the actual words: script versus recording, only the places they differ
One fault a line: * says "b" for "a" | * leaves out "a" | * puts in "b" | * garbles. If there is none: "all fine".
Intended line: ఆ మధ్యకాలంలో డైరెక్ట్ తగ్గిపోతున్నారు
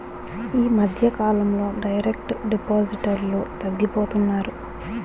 * says "ఈ" for "ఆ"
* puts in "డిపాజిటర్లు"